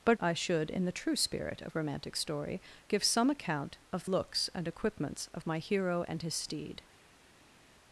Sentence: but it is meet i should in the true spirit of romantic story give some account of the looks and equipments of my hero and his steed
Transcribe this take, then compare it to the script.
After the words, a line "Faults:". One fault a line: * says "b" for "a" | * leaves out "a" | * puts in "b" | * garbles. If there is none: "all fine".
but i should in the true spirit of romantic story give some account of looks and equipments of my hero and his steed
Faults:
* leaves out "it is meet"
* leaves out "the"